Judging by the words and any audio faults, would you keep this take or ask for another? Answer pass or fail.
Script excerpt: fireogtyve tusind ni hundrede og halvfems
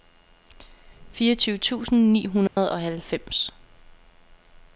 fail